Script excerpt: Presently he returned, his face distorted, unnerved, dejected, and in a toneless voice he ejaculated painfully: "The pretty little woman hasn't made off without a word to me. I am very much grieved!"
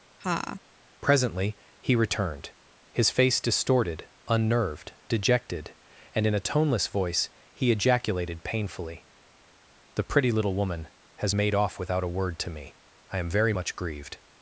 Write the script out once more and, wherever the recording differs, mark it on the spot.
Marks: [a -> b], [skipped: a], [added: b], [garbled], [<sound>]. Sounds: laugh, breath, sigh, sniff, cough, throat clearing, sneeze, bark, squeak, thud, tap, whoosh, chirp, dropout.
[laugh] Presently he returned, his face distorted, unnerved, dejected, and in a toneless voice he ejaculated painfully: "The pretty little woman [hasn't -> has] made off without a word to me. I am very much grieved!"